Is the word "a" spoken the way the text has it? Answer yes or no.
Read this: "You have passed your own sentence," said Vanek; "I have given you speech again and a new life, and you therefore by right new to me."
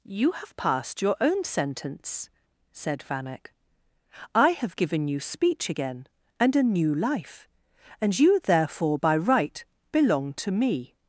yes